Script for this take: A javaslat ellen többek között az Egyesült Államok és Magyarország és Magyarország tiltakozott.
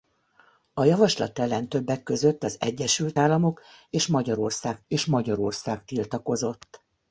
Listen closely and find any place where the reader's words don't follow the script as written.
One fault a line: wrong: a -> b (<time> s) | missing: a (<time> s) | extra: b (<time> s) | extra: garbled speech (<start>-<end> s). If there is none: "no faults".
no faults